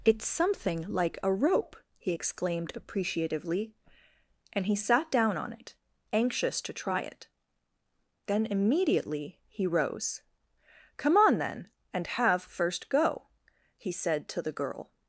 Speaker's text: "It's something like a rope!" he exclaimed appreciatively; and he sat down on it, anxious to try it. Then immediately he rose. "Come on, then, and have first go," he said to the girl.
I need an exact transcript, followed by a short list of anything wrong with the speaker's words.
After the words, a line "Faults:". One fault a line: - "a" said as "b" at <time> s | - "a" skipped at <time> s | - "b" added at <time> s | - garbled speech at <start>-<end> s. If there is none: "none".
"It's something like a rope!" he exclaimed appreciatively; and he sat down on it, anxious to try it. Then immediately he rose. "Come on, then, and have first go," he said to the girl.
Faults:
none